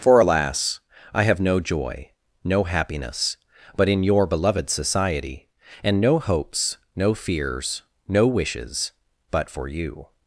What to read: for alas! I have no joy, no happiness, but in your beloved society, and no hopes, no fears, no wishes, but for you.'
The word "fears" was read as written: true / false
true